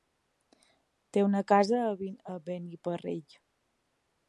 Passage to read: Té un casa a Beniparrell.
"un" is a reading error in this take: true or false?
true